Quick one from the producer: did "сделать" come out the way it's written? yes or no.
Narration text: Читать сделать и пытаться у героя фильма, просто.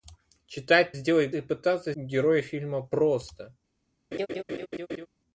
yes